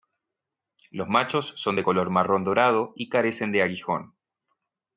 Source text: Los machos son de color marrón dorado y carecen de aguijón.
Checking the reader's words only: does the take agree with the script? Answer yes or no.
yes